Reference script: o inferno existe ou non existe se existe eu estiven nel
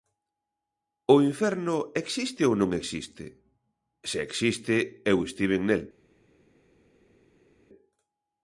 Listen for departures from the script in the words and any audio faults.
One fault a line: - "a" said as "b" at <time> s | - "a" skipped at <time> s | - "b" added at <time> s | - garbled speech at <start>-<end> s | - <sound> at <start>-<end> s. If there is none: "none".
none